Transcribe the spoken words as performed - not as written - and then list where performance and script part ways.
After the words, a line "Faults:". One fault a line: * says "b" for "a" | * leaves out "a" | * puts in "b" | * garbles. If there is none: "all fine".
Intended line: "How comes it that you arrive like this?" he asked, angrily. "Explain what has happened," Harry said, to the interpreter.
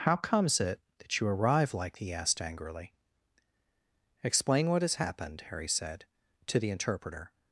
"How comes it that you arrive like?" he asked, angrily. "Explain what has happened," Harry said, to the interpreter.
Faults:
* leaves out "this"